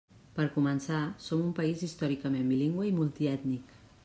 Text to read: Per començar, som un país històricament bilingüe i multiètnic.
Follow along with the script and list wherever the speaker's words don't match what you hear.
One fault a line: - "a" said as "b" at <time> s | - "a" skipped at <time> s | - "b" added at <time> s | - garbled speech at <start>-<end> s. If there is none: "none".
none